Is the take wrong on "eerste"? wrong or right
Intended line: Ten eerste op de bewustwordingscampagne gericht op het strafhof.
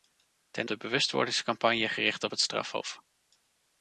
wrong